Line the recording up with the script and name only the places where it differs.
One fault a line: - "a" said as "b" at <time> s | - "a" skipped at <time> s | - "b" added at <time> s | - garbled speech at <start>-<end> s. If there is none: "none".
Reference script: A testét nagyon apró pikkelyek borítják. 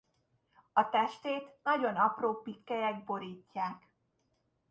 none